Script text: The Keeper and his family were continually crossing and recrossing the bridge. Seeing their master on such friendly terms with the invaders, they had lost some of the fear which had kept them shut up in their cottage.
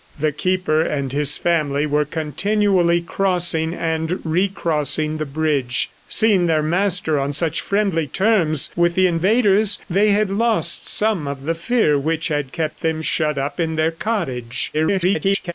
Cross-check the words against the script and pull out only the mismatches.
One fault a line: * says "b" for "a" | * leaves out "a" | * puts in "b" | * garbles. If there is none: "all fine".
* garbles